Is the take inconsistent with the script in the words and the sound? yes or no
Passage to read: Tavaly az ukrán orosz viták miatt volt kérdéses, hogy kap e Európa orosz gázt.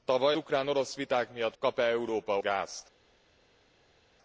yes